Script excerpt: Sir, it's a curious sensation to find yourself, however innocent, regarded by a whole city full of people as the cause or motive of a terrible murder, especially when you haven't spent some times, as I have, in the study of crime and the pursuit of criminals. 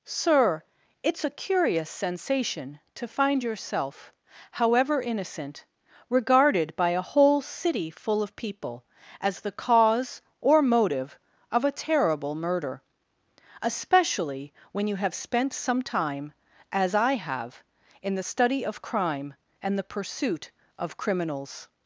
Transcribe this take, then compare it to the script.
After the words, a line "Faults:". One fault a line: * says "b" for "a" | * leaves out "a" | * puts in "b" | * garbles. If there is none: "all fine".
Sir, it's a curious sensation to find yourself, however innocent, regarded by a whole city full of people as the cause or motive of a terrible murder, especially when you have spent some time, as I have, in the study of crime and the pursuit of criminals.
Faults:
* says "have" for "haven't"
* says "time" for "times"